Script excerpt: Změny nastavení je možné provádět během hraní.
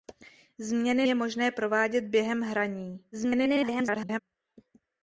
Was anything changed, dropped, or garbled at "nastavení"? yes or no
yes